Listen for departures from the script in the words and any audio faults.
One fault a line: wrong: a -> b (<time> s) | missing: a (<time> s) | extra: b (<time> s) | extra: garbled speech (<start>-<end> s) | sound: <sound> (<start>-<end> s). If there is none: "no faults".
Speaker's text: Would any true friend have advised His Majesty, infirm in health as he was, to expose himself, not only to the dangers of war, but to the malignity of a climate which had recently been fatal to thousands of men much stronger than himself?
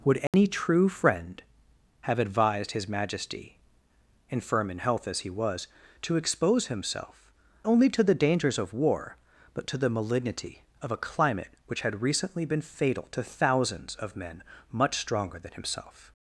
sound: dropout (0.3-0.3 s)
missing: not (7.3 s)